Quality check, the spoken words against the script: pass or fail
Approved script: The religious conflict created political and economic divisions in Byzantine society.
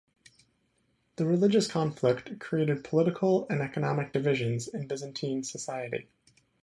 pass